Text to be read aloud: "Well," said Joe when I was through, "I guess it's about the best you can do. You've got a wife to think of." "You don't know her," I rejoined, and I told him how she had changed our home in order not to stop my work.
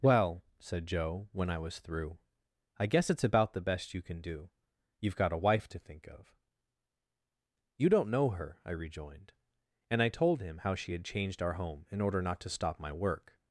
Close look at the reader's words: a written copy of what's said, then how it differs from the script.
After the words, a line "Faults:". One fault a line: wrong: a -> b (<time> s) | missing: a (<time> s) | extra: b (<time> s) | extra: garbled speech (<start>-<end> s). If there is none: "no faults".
"Well," said Joe when I was through, "I guess it's about the best you can do. You've got a wife to think of." "You don't know her," I rejoined, and I told him how she had changed our home in order not to stop my work.
Faults:
no faults